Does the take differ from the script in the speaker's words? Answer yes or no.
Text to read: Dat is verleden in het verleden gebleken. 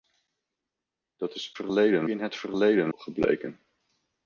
no